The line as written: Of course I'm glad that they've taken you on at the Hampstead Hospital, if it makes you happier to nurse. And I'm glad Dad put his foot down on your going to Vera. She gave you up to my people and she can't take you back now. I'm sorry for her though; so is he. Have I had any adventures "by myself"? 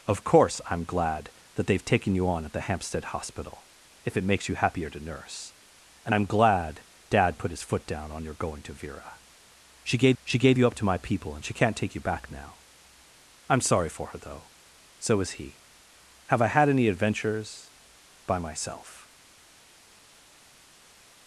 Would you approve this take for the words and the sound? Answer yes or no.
no